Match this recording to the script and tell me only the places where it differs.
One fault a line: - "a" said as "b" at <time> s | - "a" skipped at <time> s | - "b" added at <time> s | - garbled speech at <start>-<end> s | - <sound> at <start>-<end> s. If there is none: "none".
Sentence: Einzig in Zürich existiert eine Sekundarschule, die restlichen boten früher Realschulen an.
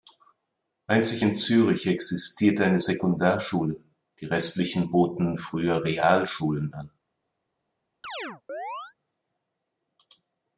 - chirp at 8.0-8.9 s